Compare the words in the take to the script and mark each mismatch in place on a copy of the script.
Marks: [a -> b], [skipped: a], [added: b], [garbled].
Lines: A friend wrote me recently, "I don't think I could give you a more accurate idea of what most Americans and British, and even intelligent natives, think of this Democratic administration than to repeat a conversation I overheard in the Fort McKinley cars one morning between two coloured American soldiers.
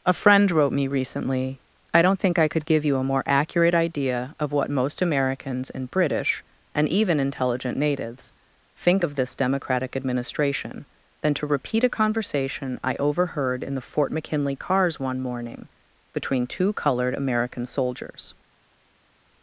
A friend wrote me recently, "I don't think I could give you a more accurate idea of what most Americans and British, and even intelligent natives, think of this Democratic administration than to repeat a conversation I overheard in the Fort McKinley cars one morning between two coloured American soldiers.